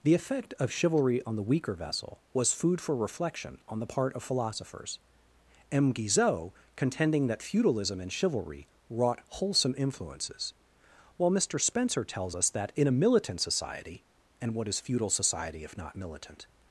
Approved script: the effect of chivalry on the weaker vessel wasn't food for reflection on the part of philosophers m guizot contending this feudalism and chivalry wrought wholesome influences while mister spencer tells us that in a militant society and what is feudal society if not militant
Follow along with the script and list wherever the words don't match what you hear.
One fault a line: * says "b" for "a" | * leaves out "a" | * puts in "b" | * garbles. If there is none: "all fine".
* says "was" for "wasn't"
* says "that" for "this"